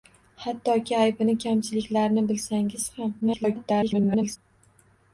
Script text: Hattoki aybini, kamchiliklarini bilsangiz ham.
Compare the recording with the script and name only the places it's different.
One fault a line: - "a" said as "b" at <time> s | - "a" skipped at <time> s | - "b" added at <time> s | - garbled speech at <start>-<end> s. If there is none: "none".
- garbled speech at 3.2-4.4 s